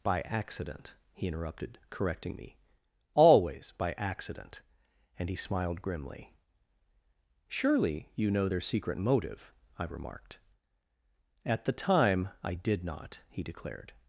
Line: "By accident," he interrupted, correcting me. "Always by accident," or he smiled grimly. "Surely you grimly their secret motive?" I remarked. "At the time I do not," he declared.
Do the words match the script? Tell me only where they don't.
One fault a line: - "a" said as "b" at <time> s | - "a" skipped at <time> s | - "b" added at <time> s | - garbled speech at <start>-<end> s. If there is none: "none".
- "or" said as "and" at 5.2 s
- "grimly" said as "know" at 8.3 s
- "do" said as "did" at 12.5 s